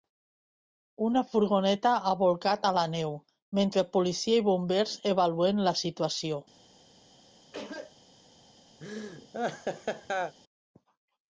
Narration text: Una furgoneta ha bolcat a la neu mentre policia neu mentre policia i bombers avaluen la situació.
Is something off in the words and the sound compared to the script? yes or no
yes